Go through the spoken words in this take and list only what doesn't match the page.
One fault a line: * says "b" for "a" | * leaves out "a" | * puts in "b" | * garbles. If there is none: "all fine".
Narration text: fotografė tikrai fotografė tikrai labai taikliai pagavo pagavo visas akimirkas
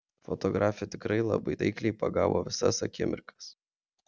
* leaves out "fotografė tikrai"
* leaves out "pagavo"